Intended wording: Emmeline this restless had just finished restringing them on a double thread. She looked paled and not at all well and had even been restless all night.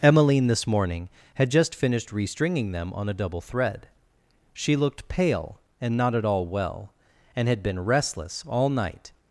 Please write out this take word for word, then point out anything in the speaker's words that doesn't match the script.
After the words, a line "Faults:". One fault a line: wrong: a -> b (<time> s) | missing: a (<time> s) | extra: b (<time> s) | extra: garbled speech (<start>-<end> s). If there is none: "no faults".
Emmeline this morning had just finished restringing them on a double thread. She looked pale and not at all well and had been restless all night.
Faults:
wrong: restless -> morning (0.7 s)
wrong: paled -> pale (5.1 s)
missing: even (7.6 s)